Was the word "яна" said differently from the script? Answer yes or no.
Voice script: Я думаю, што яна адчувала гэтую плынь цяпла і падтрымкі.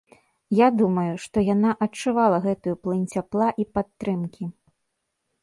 no